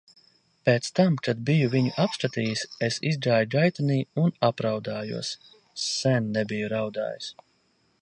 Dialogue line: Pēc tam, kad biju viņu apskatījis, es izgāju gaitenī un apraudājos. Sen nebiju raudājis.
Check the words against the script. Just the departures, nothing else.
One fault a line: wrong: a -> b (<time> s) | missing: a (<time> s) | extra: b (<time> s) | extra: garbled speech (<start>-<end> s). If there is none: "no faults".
no faults